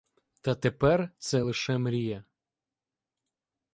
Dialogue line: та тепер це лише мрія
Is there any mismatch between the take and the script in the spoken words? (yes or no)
no